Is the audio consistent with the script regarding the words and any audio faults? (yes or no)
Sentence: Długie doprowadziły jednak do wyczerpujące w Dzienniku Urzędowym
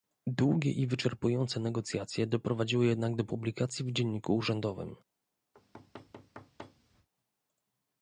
no